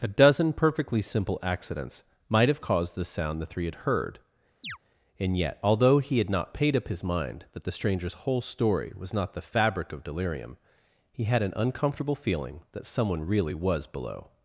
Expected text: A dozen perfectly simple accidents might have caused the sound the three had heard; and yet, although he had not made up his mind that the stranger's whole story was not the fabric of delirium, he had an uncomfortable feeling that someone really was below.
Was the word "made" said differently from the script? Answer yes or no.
yes